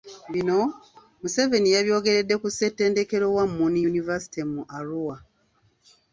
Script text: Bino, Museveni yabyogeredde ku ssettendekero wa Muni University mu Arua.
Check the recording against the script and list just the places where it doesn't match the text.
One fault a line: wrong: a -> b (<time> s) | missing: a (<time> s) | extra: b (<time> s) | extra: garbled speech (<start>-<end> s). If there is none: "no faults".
no faults